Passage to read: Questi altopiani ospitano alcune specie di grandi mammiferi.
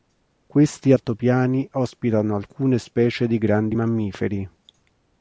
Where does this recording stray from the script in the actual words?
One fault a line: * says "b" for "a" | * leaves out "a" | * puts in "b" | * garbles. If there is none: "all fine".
all fine